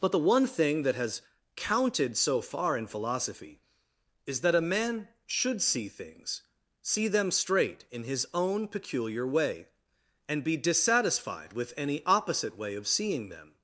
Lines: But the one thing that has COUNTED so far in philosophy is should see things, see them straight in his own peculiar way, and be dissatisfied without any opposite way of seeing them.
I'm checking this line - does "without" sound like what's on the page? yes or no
no